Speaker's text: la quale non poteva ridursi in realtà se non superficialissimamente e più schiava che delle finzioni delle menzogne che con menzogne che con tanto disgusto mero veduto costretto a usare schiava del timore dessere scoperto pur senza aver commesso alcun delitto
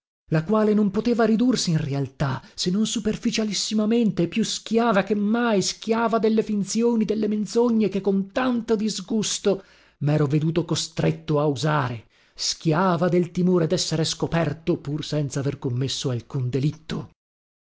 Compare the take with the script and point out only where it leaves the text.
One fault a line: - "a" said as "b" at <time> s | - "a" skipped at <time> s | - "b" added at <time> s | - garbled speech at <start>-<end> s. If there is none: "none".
- "mai schiava" added at 5.1 s
- "menzogne che con" skipped at 8.3 s